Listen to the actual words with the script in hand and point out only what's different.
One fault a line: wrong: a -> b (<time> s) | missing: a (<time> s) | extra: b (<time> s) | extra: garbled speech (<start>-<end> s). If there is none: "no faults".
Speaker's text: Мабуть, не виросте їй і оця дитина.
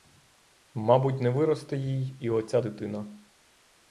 no faults